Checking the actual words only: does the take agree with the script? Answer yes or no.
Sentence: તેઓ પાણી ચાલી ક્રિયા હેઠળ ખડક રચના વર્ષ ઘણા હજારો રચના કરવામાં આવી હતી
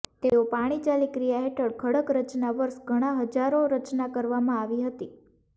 yes